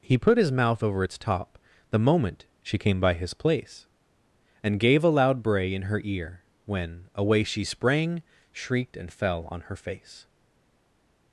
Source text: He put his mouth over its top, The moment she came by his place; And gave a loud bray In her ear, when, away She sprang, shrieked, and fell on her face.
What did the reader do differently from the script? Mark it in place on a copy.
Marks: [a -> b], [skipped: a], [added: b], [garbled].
He put his mouth over its top, The moment she came by his place; And gave a loud bray In her ear, when, away She sprang, shrieked, and fell on her face.